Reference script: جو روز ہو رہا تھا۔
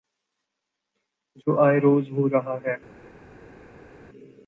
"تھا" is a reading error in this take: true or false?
true